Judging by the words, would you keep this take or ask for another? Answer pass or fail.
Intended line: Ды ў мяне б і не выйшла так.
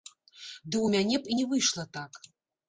pass